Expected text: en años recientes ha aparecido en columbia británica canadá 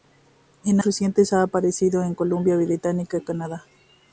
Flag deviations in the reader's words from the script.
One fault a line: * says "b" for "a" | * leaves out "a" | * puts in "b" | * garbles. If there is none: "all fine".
* leaves out "años"